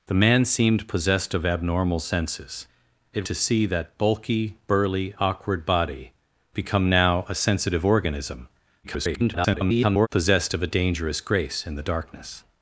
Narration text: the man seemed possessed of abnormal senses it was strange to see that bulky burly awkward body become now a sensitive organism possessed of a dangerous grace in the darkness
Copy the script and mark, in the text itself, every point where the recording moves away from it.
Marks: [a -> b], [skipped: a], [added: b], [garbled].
the man seemed possessed of abnormal senses it [skipped: was strange] to see that bulky burly awkward body become now a sensitive organism [garbled] possessed of a dangerous grace in the darkness